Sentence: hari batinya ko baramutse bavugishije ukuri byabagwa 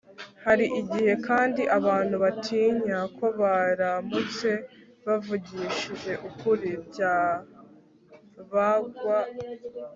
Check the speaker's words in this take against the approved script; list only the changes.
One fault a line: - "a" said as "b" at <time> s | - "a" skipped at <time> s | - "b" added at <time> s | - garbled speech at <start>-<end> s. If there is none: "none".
- "igihe kandi abantu" added at 0.8 s